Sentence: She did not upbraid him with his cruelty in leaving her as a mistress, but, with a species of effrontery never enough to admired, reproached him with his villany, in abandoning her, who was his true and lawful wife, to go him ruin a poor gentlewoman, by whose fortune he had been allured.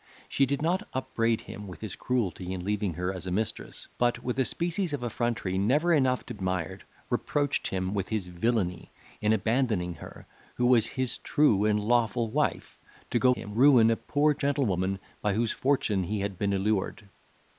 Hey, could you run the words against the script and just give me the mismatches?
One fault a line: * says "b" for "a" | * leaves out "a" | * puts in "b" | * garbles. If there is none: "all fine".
all fine